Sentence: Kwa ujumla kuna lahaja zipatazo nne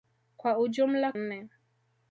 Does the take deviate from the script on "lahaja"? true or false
true